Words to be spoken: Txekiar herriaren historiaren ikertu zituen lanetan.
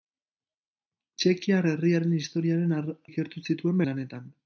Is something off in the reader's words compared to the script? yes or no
no